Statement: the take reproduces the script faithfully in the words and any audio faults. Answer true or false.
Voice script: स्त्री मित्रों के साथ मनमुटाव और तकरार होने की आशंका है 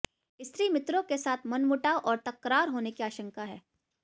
true